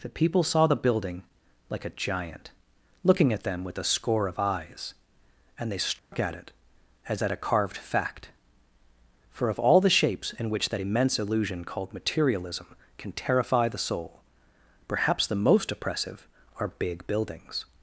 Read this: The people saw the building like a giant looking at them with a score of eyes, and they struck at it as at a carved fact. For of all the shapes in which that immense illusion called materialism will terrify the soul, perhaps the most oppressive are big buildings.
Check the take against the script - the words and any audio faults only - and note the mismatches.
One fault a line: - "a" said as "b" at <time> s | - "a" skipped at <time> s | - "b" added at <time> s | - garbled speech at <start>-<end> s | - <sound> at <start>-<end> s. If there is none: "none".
- dropout at 6.0-6.1 s
- "will" said as "can" at 13.0 s